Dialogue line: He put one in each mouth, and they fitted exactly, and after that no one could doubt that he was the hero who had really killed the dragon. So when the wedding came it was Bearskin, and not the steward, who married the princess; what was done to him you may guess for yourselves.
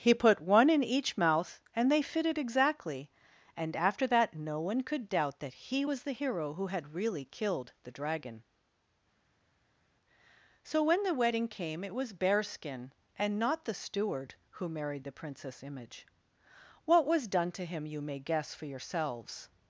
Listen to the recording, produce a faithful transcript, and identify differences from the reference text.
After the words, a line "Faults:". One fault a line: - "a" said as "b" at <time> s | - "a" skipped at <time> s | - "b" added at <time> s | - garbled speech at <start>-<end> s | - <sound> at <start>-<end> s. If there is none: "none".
He put one in each mouth, and they fitted exactly, and after that no one could doubt that he was the hero who had really killed the dragon. So when the wedding came it was Bearskin, and not the steward, who married the princess; image what was done to him you may guess for yourselves.
Faults:
- "image" added at 15.6 s